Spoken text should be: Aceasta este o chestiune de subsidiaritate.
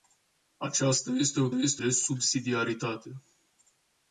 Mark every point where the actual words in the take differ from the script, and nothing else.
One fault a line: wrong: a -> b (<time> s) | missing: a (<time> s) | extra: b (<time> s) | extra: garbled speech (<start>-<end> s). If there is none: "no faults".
wrong: chestiune -> este (1.5 s)